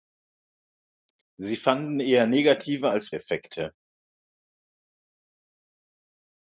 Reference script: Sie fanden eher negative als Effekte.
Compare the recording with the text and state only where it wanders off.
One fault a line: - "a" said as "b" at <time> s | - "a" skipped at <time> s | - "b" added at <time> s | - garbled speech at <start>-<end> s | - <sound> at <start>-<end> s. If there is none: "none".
none